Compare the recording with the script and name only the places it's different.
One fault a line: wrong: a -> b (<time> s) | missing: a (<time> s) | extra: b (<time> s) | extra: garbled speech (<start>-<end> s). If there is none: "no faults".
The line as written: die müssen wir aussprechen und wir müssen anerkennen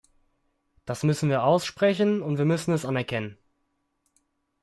wrong: die -> das (0.8 s)
extra: es (2.7 s)